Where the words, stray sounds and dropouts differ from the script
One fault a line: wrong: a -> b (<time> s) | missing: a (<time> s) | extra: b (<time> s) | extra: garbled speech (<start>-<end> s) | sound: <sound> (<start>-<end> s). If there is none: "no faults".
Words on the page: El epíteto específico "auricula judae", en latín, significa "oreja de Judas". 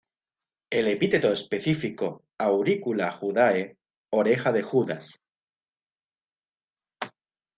missing: en latín significa (3.8 s)